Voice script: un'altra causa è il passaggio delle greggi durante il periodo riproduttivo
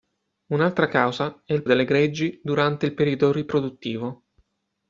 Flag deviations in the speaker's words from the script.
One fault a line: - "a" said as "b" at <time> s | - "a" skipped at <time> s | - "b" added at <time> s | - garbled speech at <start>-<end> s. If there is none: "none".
- "passaggio" skipped at 1.6 s